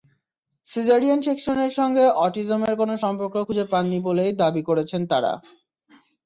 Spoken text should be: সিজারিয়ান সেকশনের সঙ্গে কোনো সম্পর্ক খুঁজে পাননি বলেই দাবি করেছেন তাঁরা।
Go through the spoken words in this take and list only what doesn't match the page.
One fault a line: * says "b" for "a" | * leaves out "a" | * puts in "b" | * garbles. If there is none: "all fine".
* puts in "অটিজমের"